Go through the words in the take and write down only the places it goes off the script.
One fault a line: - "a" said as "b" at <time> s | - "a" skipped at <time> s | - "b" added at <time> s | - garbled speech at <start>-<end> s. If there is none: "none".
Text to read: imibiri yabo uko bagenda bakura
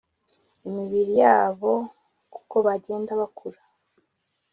none